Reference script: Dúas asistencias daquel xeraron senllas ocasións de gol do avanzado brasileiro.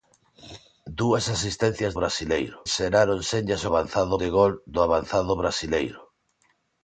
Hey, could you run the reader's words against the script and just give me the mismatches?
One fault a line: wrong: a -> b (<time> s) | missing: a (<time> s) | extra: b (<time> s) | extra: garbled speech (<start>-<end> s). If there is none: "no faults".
wrong: daquel -> brasileiro (2.0 s)
wrong: ocasións -> avanzado (3.7 s)